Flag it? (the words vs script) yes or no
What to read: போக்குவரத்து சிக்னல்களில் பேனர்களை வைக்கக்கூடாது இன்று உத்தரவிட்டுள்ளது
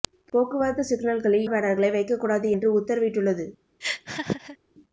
no